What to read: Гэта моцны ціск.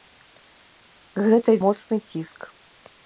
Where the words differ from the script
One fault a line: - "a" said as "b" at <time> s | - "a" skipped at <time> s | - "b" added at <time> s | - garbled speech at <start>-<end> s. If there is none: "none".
none